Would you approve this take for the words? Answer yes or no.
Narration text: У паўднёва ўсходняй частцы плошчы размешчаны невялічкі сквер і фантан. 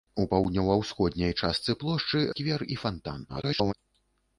no